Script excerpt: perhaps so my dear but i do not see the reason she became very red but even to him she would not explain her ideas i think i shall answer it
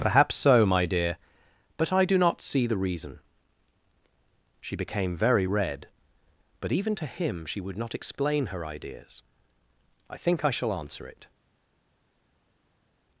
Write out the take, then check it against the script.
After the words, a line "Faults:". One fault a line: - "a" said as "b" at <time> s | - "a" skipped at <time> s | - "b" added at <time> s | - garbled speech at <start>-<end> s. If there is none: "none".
perhaps so my dear but i do not see the reason she became very red but even to him she would not explain her ideas i think i shall answer it
Faults:
none